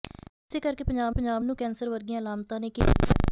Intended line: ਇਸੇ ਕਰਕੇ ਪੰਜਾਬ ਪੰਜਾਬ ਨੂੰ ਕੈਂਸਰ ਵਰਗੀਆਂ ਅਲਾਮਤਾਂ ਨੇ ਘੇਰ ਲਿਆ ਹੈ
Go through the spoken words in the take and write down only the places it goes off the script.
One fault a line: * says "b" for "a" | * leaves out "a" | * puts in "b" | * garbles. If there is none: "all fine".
all fine